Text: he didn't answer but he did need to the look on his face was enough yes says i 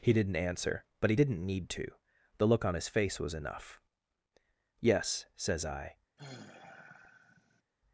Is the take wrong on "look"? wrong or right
right